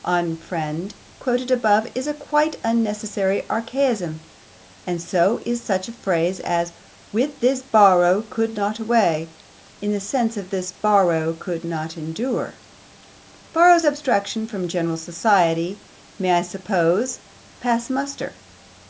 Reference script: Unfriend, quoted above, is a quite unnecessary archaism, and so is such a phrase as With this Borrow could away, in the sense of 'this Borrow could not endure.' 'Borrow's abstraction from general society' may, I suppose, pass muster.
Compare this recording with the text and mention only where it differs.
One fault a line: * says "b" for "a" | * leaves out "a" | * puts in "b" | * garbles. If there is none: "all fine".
* puts in "not"